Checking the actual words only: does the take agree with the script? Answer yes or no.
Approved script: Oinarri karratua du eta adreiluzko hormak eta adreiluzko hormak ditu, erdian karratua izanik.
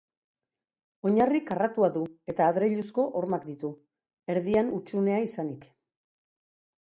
no